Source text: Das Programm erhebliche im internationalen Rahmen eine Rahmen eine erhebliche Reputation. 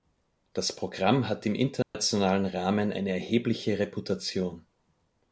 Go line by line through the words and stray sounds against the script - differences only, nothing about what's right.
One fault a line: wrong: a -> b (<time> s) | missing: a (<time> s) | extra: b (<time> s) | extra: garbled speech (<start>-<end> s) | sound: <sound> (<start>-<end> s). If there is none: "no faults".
wrong: erhebliche -> hat (1.3 s)
sound: dropout (1.8-1.9 s)
missing: Rahmen eine (3.1 s)